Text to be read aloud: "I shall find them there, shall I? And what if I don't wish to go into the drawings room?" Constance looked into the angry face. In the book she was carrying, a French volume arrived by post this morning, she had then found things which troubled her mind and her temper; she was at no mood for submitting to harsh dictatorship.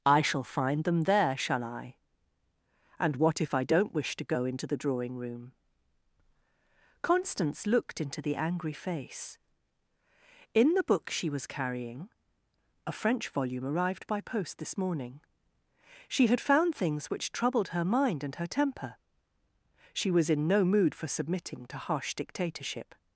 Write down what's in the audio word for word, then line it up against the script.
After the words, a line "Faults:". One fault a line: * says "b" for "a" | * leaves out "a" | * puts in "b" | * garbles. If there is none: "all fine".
"I shall find them there, shall I? And what if I don't wish to go into the drawing room?" Constance looked into the angry face. In the book she was carrying, a French volume arrived by post this morning, she had found things which troubled her mind and her temper; she was in no mood for submitting to harsh dictatorship.
Faults:
* says "drawing" for "drawings"
* leaves out "then"
* says "in" for "at"